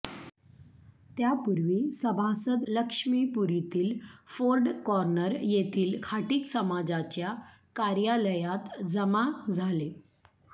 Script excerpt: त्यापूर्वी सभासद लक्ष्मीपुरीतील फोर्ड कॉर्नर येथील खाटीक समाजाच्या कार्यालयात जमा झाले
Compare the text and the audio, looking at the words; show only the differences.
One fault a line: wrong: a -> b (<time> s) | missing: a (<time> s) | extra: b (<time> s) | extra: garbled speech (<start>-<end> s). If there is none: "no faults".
no faults